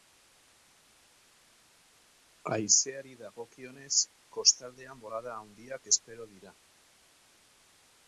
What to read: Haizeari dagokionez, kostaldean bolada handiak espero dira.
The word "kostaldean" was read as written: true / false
true